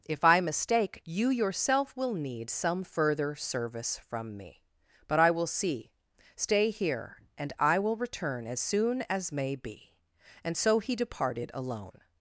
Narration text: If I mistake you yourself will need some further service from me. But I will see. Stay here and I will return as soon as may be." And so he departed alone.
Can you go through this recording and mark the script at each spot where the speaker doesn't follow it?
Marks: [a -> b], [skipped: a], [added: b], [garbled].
If I mistake you yourself will need some further service from me. But I will see. Stay here and I will return as soon as may be." And so he departed alone.